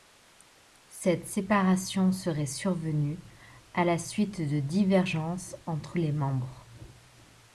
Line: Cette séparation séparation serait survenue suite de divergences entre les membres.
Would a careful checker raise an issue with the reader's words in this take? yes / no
yes